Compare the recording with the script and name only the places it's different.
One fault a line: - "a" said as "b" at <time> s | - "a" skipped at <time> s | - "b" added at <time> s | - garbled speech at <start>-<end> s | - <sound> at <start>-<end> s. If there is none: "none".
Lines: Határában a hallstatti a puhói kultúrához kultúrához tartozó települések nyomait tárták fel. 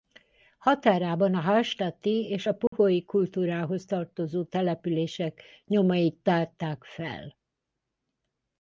- "és" added at 2.3 s
- dropout at 2.7-2.7 s
- "kultúrához" skipped at 3.8 s